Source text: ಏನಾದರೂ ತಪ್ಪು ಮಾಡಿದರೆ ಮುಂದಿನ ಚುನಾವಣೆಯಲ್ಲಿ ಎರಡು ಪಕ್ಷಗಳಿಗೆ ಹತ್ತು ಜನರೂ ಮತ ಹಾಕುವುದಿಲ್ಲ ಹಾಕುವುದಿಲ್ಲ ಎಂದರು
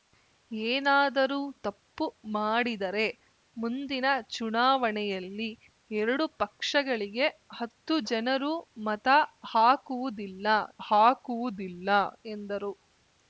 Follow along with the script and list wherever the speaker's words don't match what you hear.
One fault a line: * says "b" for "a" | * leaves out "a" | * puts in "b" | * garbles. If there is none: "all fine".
all fine